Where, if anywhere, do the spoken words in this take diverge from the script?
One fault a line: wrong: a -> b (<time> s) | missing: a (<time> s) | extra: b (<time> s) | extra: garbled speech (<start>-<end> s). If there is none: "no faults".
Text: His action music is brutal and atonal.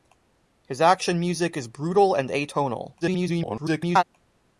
extra: garbled speech (3.0-4.0 s)